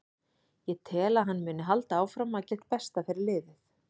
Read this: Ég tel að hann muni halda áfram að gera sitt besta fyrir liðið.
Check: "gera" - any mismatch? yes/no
yes